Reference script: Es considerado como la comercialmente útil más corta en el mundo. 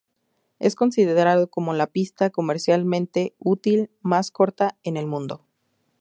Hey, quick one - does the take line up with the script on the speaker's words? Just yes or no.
no